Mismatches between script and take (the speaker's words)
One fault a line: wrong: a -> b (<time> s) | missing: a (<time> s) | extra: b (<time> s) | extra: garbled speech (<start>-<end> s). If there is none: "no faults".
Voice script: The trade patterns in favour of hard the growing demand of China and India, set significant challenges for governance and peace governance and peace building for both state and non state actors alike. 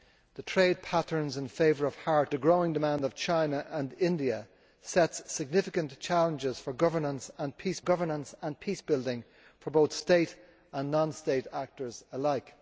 no faults